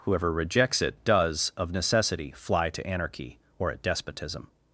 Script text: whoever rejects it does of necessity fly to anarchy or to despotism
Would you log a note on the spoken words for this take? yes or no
yes